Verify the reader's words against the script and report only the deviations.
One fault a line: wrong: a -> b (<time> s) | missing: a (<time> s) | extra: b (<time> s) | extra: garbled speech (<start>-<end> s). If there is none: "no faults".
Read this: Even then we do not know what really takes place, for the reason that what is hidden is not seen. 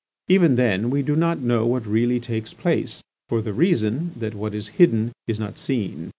no faults